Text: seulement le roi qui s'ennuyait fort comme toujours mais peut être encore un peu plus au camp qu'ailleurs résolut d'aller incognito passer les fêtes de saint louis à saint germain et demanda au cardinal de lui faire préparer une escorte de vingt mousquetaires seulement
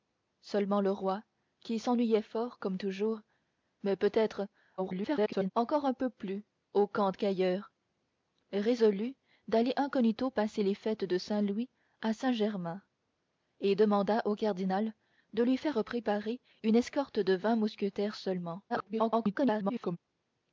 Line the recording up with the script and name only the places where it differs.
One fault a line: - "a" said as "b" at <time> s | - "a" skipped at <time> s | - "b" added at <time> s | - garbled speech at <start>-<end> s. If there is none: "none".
- garbled speech at 4.8-5.5 s
- garbled speech at 18.7-20.0 s